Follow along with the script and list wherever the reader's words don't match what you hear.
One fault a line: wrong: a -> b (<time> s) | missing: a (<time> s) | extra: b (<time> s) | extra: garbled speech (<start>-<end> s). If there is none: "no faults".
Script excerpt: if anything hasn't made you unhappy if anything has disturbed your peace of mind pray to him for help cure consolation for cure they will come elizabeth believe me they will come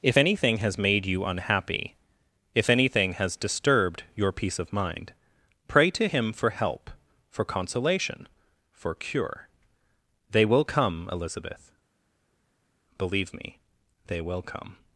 wrong: hasn't -> has (0.6 s)
wrong: cure -> for (7.3 s)